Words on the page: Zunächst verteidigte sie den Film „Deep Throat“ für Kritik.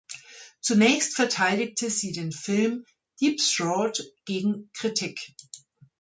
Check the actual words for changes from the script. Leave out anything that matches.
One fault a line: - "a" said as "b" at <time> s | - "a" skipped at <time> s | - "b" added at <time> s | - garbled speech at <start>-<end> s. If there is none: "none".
- "für" said as "gegen" at 4.2 s